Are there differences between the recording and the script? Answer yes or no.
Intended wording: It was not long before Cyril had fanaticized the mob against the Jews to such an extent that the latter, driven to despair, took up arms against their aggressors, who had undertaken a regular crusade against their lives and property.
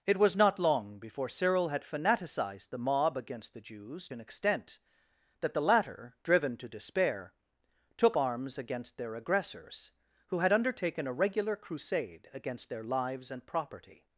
yes